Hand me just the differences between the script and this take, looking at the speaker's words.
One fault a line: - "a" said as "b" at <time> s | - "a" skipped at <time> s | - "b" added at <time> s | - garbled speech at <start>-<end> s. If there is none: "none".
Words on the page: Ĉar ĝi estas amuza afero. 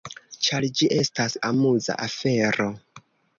none